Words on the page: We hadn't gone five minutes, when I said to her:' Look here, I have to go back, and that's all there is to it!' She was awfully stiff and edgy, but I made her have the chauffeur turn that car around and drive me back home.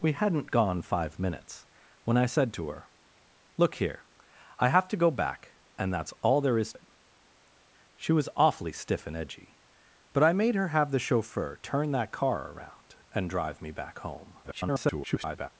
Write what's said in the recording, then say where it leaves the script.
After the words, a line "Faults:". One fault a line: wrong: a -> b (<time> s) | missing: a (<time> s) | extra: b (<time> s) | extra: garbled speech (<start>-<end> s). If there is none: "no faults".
We hadn't gone five minutes, when I said to her:' Look here, I have to go back, and that's all there is it!' She was awfully stiff and edgy, but I made her have the chauffeur turn that car around and drive me back home. [garbled]
Faults:
missing: to (6.7 s)
extra: garbled speech (14.4-15.5 s)